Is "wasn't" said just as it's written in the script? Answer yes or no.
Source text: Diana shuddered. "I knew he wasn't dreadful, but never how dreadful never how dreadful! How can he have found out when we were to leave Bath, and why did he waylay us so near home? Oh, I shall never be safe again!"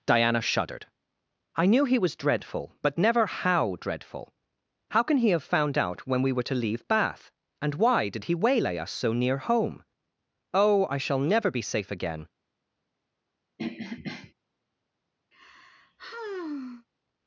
no